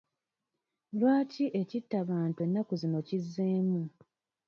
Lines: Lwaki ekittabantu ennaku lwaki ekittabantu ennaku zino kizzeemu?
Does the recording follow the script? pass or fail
fail